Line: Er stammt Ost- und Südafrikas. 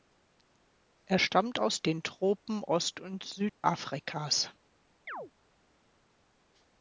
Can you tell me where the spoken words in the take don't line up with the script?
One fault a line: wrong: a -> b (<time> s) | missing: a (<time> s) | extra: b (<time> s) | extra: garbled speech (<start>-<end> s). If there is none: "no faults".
extra: aus den Tropen (1.6 s)